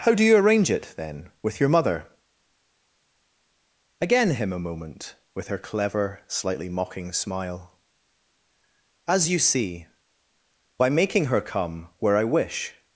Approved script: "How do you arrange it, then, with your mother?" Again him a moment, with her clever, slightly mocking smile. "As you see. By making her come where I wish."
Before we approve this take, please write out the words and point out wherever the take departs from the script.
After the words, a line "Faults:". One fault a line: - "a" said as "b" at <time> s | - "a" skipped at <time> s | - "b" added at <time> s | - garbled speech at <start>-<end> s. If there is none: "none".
"How do you arrange it, then, with your mother?" Again him a moment, with her clever, slightly mocking smile. "As you see. By making her come where I wish."
Faults:
none